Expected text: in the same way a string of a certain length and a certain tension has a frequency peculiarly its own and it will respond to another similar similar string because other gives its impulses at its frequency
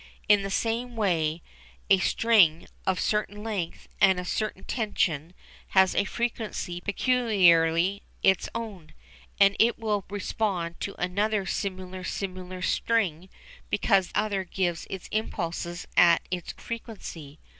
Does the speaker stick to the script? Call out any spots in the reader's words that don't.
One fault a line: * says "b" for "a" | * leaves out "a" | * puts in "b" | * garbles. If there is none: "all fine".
all fine